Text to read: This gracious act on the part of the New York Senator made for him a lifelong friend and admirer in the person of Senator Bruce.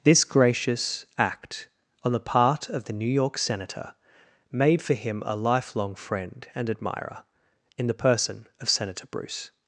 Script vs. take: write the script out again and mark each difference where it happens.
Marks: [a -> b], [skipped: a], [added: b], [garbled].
This gracious act on the part of the New York Senator made for him a lifelong friend and admirer in the person of Senator Bruce.